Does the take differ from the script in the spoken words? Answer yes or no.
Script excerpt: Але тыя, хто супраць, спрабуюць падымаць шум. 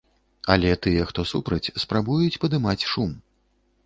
no